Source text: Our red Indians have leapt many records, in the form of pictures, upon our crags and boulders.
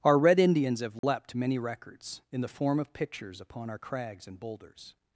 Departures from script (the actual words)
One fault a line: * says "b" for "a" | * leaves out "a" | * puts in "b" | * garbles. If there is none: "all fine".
all fine